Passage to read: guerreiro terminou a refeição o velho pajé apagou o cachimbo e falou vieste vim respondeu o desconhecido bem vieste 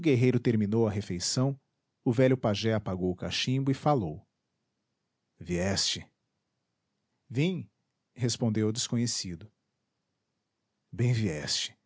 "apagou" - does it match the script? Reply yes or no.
yes